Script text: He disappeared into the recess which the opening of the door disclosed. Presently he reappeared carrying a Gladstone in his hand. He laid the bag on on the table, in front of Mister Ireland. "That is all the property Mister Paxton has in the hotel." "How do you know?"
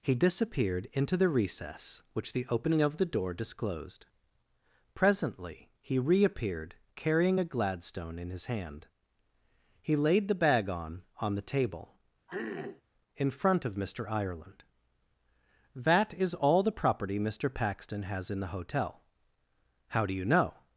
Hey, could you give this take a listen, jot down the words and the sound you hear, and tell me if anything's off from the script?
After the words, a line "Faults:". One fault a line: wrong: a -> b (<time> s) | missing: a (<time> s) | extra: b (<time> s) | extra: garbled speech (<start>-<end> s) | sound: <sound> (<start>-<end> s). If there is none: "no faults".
He disappeared into the recess which the opening of the door disclosed. Presently he reappeared carrying a Gladstone in his hand. He laid the bag on on the table, in front of Mister Ireland. "That is all the property Mister Paxton has in the hotel." "How do you know?"
Faults:
sound: throat clearing (12.3-12.8 s)